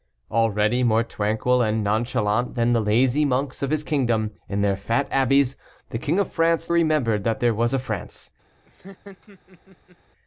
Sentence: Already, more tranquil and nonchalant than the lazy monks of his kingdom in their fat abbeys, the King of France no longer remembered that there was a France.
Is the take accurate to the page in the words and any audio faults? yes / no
no